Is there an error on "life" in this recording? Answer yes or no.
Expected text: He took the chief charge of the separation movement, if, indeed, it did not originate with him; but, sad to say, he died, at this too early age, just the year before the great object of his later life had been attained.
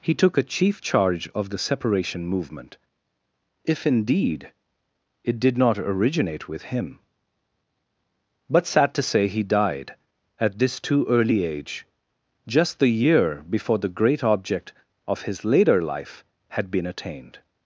no